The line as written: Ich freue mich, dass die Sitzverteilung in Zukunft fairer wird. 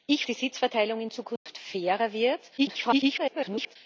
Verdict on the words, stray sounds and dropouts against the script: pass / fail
fail